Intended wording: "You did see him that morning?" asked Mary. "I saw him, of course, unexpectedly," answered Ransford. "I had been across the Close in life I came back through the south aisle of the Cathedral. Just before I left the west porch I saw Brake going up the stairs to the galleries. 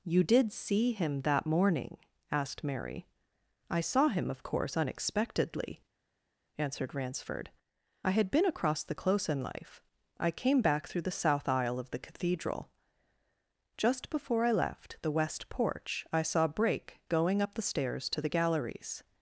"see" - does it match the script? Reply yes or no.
yes